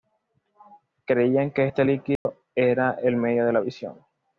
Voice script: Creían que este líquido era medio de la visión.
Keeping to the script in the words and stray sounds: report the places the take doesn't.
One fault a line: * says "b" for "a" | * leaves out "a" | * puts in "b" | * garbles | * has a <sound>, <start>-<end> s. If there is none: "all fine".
* has a dropout, 2.2-2.3 s
* puts in "el"